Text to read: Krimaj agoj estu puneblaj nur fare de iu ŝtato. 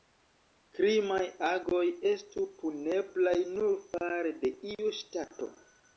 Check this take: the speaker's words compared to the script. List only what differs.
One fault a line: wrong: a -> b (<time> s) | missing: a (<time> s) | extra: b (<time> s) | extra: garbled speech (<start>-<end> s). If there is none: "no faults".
no faults